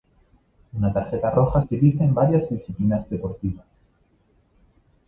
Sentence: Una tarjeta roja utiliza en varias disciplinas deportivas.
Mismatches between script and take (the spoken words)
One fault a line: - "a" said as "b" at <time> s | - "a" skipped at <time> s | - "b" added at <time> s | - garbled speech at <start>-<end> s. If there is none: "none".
none